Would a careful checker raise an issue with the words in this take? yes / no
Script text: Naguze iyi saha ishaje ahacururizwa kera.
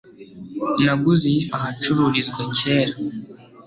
yes